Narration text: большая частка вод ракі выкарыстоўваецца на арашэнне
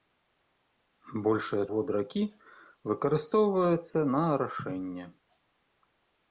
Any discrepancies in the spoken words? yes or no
yes